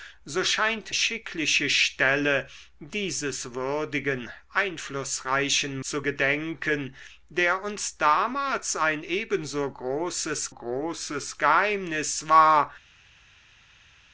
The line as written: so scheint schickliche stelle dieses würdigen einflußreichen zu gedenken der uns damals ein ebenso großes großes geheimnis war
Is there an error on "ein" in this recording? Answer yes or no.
no